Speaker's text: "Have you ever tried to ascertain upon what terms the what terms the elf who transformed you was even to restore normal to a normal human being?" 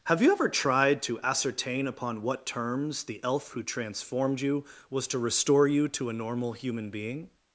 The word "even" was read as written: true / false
false